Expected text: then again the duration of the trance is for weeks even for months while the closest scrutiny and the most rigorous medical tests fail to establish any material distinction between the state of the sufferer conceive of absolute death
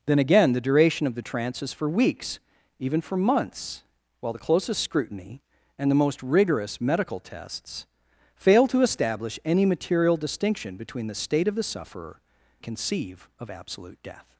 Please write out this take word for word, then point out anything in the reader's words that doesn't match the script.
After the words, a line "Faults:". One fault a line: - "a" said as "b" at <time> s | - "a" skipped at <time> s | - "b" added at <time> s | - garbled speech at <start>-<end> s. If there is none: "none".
then again the duration of the trance is for weeks even for months while the closest scrutiny and the most rigorous medical tests fail to establish any material distinction between the state of the sufferer conceive of absolute death
Faults:
none